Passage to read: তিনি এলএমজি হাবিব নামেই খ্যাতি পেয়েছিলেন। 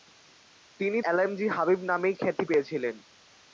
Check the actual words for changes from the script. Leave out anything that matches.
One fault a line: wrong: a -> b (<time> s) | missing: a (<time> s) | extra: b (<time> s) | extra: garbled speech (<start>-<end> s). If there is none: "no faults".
no faults